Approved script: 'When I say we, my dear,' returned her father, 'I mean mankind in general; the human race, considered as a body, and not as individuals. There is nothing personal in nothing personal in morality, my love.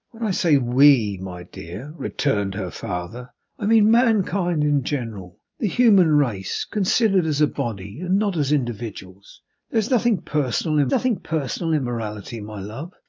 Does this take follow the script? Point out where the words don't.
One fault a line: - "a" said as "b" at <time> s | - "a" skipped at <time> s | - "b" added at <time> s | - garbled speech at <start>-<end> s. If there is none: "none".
none